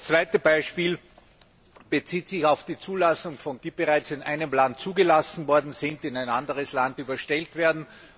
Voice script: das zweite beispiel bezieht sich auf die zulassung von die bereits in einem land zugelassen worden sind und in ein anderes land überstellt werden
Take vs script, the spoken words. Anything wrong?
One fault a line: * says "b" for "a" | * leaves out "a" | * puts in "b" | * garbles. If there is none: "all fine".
all fine